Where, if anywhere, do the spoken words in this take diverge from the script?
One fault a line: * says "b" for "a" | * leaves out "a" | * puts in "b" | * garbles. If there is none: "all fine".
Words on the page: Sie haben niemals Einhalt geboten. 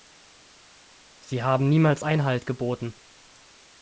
all fine